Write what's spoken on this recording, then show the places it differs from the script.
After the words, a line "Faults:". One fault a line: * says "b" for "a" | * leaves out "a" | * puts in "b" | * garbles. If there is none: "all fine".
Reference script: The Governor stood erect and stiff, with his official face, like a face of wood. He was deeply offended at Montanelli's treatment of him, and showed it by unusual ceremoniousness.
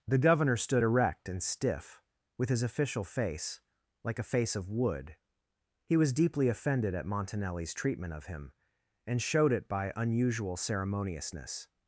The Governor stood erect and stiff, with his official face, like a face of wood. He was deeply offended at Montanelli's treatment of him, and showed it by unusual ceremoniousness.
Faults:
all fine